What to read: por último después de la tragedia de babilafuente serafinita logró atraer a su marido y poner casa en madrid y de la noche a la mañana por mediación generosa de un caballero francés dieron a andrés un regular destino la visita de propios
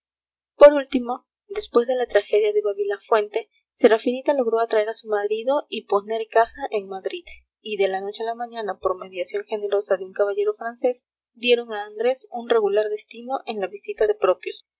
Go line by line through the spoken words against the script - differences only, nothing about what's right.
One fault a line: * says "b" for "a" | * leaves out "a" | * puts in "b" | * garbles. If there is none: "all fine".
* puts in "en"